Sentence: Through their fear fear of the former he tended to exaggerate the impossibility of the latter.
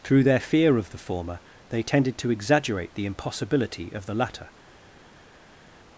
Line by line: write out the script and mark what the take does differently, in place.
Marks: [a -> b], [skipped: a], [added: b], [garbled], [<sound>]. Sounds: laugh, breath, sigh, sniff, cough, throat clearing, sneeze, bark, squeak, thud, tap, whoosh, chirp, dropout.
Through their fear [skipped: fear] of the former [he -> they] tended to exaggerate the impossibility of the latter.